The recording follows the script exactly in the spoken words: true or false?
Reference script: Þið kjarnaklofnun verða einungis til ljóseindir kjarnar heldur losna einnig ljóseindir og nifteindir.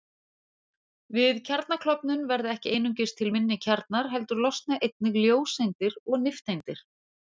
false